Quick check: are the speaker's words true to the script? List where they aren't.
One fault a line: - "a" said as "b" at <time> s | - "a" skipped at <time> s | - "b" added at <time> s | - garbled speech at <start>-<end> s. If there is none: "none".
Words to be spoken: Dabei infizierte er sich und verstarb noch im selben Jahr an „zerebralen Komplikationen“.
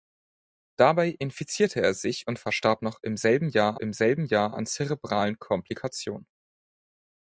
- "im selben Jahr" added at 3.8 s